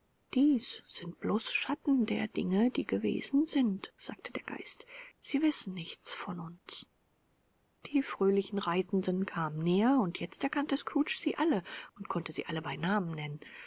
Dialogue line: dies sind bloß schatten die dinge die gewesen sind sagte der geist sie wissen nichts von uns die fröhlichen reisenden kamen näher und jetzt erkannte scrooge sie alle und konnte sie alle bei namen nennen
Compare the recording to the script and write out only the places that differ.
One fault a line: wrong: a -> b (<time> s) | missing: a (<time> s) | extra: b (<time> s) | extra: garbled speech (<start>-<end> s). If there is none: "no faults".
wrong: die -> der (2.1 s)